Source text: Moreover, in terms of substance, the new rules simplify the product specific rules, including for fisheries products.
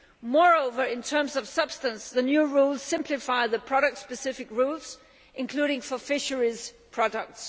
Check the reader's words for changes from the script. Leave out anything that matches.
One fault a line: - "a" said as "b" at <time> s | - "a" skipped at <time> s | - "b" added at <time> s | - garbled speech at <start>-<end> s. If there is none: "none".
none